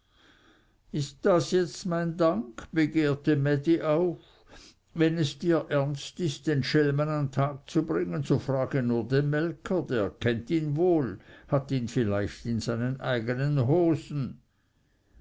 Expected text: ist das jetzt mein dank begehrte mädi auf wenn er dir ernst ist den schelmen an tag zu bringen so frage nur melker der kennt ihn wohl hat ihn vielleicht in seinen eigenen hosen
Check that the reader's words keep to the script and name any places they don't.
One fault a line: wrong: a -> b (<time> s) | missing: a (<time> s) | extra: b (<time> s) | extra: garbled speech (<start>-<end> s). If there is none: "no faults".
wrong: er -> es (5.2 s)
extra: den (9.1 s)